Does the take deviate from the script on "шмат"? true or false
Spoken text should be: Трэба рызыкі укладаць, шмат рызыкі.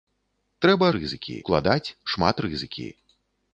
false